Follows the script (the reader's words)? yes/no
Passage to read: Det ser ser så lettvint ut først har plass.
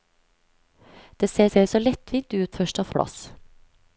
yes